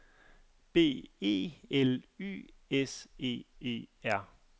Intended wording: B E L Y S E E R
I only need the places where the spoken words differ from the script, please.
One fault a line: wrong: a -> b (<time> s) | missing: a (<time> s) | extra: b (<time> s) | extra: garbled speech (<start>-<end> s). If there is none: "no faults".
no faults